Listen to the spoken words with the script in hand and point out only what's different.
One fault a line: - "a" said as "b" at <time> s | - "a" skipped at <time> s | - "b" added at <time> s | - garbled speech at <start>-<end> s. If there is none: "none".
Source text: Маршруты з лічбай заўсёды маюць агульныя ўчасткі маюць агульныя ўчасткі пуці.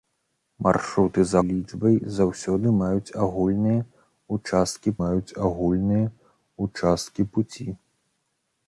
none